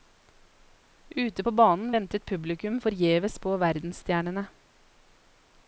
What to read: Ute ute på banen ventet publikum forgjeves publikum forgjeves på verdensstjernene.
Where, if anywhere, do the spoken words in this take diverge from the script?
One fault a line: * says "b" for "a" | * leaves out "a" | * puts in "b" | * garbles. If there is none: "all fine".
* leaves out "ute"
* leaves out "publikum forgjeves"